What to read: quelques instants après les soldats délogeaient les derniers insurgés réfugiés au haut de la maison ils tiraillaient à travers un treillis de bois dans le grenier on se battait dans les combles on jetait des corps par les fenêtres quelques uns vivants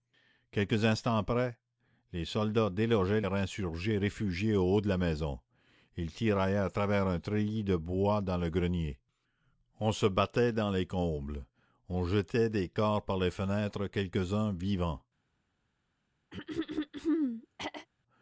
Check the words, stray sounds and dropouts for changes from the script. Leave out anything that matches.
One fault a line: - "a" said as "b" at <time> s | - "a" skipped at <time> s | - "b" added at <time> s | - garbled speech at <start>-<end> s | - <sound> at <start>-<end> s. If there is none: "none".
- "les derniers" skipped at 3.2 s
- throat clearing at 16.3-17.9 s